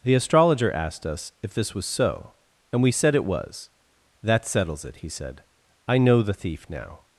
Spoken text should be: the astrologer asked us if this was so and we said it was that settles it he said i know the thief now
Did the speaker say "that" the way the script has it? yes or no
yes